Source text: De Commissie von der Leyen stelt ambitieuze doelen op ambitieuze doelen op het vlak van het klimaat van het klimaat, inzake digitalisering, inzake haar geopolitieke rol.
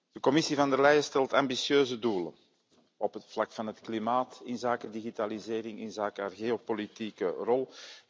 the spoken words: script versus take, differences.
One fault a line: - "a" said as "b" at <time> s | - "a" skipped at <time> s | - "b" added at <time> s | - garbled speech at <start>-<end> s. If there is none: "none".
- "ambitieuze doelen op" skipped at 3.1 s
- "van het klimaat" skipped at 4.4 s